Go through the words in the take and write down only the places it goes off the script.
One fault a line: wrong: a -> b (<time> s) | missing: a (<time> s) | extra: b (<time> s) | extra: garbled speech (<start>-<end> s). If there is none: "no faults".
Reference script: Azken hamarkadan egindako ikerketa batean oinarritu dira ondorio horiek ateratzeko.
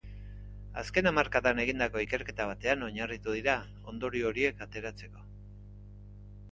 no faults